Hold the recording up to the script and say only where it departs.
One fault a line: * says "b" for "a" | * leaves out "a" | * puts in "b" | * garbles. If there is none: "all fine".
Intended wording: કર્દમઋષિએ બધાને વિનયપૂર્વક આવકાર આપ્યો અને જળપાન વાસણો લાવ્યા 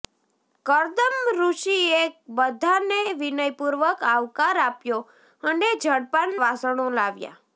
all fine